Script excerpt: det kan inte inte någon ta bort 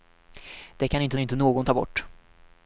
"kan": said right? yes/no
yes